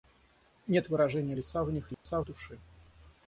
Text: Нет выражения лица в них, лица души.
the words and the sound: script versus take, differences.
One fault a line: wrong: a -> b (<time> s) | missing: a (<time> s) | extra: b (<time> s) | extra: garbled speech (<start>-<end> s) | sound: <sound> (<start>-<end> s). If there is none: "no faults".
sound: dropout (1.9-2.1 s)